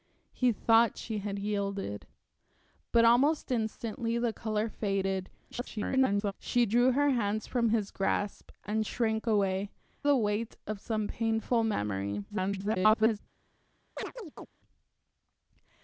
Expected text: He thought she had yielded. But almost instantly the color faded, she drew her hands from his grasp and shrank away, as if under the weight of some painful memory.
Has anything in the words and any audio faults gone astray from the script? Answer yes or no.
yes